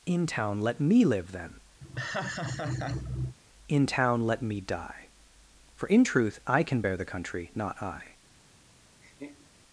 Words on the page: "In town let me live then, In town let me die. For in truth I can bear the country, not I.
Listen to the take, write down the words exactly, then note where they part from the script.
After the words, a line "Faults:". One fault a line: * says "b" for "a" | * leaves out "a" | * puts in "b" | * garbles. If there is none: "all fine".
"In town let me live then, In town let me die. For in truth I can bear the country, not I.
Faults:
all fine